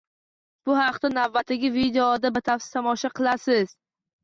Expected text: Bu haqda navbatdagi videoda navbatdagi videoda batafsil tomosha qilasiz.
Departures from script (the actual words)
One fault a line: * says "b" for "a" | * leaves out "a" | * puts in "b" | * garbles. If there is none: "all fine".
* leaves out "navbatdagi videoda"